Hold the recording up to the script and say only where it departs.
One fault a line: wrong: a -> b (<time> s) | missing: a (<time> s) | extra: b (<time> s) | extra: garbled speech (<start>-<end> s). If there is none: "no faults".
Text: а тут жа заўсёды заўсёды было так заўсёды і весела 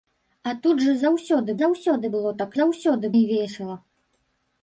no faults